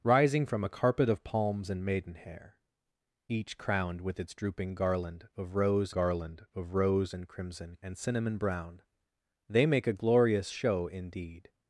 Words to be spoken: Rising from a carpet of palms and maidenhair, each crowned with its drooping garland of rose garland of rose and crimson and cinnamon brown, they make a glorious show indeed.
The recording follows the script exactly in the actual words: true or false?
true